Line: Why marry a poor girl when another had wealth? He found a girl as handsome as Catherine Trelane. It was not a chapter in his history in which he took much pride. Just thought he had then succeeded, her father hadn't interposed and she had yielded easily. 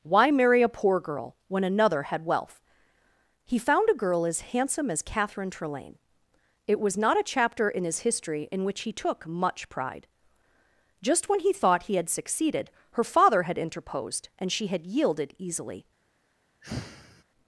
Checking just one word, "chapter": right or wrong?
right